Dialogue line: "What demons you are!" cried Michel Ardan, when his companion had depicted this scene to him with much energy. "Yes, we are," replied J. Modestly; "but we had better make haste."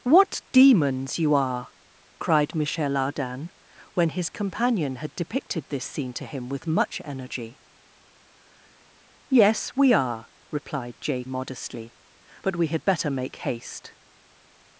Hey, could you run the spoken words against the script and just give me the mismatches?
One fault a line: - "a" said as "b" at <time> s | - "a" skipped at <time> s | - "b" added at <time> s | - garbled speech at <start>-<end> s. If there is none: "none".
none